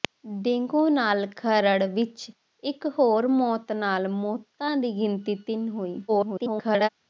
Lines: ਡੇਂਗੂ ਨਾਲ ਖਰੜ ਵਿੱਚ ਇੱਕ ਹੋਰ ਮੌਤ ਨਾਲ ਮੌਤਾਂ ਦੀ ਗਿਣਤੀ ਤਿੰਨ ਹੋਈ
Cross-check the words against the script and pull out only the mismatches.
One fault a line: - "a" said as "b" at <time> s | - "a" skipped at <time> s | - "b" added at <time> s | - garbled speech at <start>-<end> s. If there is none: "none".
- garbled speech at 6.1-6.9 s